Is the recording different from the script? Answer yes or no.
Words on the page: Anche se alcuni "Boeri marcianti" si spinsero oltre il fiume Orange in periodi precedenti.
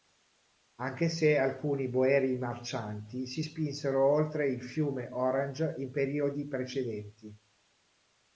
no